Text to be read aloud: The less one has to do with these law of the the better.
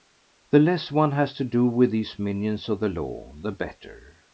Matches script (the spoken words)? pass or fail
fail